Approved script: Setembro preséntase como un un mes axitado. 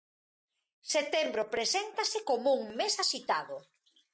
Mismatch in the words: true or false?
true